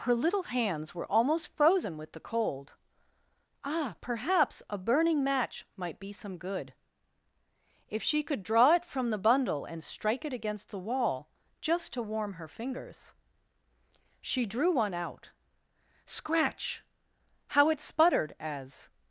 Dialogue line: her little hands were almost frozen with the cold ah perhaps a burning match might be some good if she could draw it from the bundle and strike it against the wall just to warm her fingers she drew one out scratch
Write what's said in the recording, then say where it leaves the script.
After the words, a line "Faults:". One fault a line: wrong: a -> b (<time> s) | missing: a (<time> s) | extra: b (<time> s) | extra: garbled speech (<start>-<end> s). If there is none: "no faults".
her little hands were almost frozen with the cold ah perhaps a burning match might be some good if she could draw it from the bundle and strike it against the wall just to warm her fingers she drew one out scratch how it sputtered as
Faults:
extra: how it sputtered as (17.5 s)